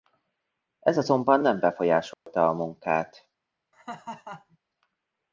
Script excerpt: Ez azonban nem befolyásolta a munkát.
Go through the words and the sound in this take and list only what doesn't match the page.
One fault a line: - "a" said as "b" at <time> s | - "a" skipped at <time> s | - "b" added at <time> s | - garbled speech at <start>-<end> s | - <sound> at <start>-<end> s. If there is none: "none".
- dropout at 2.1-2.3 s
- laugh at 3.7-4.6 s